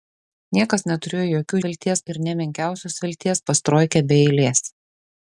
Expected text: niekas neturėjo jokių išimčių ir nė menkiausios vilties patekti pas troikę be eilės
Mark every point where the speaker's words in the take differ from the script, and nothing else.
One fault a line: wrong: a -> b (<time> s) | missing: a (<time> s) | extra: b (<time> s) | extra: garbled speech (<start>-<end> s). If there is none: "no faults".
wrong: išimčių -> vilties (1.7 s)
missing: patekti (3.4 s)